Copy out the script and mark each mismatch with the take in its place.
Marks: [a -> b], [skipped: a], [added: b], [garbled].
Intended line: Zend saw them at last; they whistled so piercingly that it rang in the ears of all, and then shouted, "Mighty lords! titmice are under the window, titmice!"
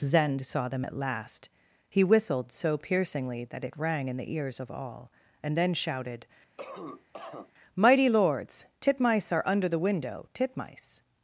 Zend saw them at last; [they -> he] whistled so piercingly that it rang in the ears of all, and then shouted, "Mighty lords! titmice are under the window, titmice!"